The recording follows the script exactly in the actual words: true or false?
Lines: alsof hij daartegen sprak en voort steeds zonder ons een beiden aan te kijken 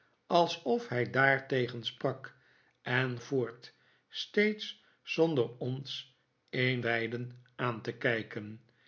true